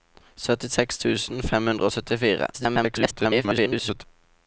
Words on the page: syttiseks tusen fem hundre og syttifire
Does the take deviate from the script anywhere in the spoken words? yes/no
yes